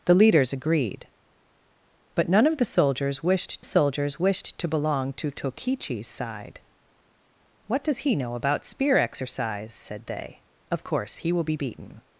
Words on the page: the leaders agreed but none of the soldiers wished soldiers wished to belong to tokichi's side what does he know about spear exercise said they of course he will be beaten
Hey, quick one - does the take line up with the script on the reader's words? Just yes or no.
yes